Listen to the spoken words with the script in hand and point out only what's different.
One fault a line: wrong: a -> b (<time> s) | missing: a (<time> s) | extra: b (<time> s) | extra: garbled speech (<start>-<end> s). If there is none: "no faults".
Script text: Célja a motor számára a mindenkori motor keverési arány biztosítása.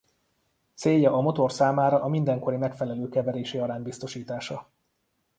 wrong: motor -> megfelelő (2.6 s)